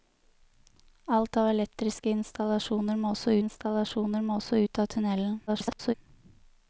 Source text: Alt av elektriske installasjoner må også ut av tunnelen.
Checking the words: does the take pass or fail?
fail